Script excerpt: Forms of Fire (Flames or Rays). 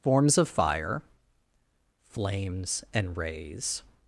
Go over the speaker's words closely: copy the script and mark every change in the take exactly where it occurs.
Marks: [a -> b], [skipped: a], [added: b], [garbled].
Forms of Fire (Flames [or -> and] Rays).